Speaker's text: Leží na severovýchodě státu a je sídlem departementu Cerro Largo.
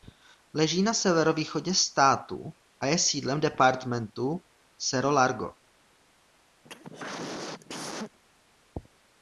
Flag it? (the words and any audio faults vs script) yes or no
yes